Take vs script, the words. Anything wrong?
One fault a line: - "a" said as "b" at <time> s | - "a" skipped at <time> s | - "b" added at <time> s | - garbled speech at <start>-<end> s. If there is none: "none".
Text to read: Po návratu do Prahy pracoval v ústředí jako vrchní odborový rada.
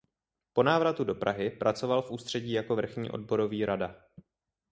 none